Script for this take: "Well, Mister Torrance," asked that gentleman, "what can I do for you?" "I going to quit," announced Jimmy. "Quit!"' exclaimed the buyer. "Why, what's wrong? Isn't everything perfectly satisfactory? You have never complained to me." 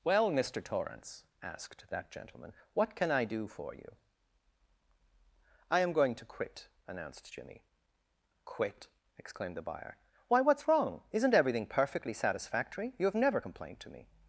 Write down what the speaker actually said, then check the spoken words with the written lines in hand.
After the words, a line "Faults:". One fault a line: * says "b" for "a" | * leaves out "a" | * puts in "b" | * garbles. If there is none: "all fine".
"Well, Mister Torrance," asked that gentleman, "what can I do for you?" "I am going to quit," announced Jimmy. "Quit!"' exclaimed the buyer. "Why, what's wrong? Isn't everything perfectly satisfactory? You have never complained to me."
Faults:
* puts in "am"